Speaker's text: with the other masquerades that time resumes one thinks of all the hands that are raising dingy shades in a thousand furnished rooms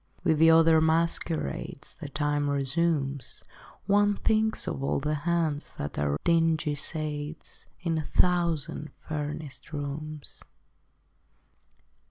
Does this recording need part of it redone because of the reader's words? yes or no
yes